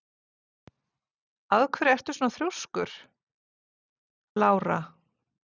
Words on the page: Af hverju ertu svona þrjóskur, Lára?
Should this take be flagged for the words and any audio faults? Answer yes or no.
no